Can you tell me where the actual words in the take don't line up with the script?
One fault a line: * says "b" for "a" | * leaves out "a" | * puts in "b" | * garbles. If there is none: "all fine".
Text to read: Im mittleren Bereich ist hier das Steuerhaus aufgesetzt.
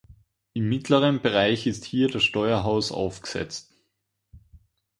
all fine